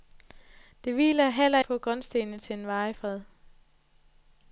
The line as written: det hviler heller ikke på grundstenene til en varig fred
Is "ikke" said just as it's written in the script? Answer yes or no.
no